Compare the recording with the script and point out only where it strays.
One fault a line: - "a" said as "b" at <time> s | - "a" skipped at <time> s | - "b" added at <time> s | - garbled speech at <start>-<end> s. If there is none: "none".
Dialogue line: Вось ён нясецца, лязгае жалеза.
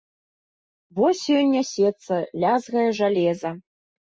none